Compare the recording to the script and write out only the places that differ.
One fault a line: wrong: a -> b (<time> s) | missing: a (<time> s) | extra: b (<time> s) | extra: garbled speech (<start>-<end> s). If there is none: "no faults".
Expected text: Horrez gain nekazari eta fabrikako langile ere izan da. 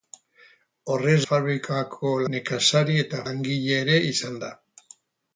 wrong: gain -> fabrikako (1.3 s)
missing: fabrikako (3.2 s)